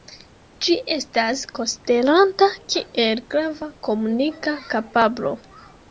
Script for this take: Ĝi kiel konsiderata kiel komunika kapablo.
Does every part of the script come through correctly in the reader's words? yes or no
no